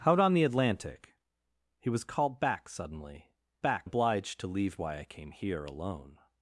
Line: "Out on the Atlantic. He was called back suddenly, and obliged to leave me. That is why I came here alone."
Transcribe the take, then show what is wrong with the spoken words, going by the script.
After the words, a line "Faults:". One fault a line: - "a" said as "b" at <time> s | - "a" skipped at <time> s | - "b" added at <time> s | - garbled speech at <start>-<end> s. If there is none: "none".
"Out on the Atlantic. He was called back suddenly, back obliged to leave why I came here alone."
Faults:
- "and" said as "back" at 3.6 s
- "me That is" skipped at 4.8 s